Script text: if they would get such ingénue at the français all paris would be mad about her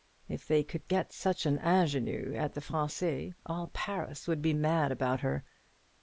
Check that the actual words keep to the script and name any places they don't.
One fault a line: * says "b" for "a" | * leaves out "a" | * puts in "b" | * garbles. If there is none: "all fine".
* says "could" for "would"
* puts in "an"